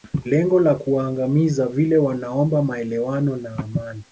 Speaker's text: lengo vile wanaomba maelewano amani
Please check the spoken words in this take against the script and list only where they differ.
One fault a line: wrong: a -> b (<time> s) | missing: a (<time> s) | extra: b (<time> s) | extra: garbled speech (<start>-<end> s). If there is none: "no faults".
extra: la kuwaangamiza (0.6 s)
extra: na (3.4 s)